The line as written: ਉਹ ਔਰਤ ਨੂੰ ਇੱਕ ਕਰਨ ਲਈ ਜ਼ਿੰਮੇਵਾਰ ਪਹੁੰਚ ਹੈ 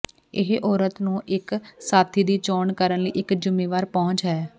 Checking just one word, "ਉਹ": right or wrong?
wrong